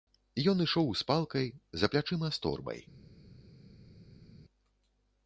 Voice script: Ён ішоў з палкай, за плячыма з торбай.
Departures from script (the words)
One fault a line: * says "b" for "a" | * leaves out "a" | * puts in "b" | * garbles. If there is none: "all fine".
all fine